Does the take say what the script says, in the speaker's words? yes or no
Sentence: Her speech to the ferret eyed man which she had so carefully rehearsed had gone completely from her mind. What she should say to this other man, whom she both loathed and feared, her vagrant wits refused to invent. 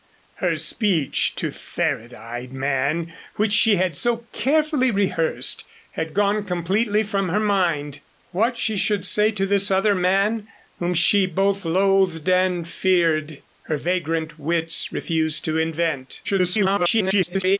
no